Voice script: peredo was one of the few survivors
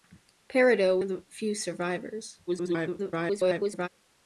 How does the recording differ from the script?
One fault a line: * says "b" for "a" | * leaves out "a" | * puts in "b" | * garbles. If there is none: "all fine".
* leaves out "was one"
* garbles